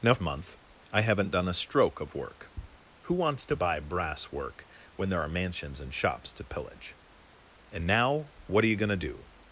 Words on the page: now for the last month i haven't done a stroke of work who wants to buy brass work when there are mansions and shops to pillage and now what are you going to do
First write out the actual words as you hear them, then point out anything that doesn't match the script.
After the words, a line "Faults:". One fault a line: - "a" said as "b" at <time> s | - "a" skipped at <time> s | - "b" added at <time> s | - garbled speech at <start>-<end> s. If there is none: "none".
now month i haven't done a stroke of work who wants to buy brass work when there are mansions and shops to pillage and now what are you going to do
Faults:
- "for the last" skipped at 0.1 s